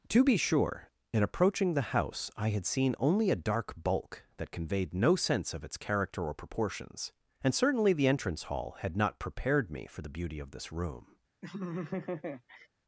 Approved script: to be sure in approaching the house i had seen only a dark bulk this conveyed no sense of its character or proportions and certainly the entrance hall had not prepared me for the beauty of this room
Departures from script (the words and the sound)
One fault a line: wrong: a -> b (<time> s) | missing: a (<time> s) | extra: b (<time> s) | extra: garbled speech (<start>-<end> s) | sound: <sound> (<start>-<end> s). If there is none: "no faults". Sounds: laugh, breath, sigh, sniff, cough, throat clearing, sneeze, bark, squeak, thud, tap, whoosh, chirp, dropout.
wrong: this -> that (4.4 s)
sound: laugh (11.4-12.7 s)